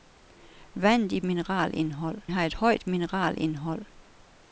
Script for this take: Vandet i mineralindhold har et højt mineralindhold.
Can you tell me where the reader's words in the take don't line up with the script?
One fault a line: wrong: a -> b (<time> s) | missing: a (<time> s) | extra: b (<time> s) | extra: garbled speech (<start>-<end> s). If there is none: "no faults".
no faults